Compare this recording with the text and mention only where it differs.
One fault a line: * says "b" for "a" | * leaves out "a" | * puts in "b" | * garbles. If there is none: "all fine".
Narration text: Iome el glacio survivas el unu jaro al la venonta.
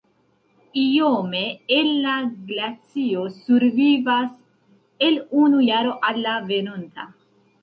* puts in "la"